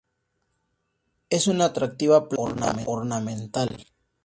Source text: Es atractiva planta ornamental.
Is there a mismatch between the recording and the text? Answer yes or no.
yes